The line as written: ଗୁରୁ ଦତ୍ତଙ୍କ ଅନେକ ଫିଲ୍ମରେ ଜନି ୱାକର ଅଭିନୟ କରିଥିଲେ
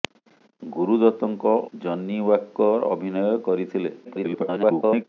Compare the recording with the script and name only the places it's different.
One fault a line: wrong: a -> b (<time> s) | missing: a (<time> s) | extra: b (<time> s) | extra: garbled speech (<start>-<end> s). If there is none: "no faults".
missing: ଅନେକ ଫିଲ୍ମରେ (1.5 s)
extra: garbled speech (4.0-5.0 s)